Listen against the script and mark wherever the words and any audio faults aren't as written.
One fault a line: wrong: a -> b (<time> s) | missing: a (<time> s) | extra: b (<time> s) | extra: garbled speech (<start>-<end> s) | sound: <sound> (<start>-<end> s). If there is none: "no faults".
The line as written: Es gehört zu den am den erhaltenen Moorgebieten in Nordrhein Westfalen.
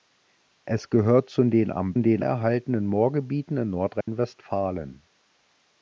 sound: dropout (4.0-4.1 s)